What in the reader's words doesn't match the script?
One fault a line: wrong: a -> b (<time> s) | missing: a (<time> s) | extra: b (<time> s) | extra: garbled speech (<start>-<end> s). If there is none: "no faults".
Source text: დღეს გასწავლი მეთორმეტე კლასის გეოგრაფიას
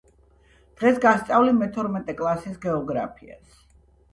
no faults